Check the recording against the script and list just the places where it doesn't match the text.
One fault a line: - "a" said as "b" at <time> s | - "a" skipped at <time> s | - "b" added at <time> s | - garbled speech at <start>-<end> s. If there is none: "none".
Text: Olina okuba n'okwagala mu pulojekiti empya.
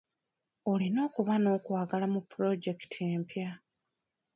none